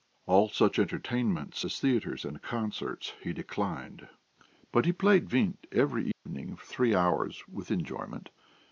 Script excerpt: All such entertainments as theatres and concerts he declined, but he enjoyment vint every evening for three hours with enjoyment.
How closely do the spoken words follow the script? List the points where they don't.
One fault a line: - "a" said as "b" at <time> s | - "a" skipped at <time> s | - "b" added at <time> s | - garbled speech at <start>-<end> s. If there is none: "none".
- "enjoyment" said as "played" at 4.9 s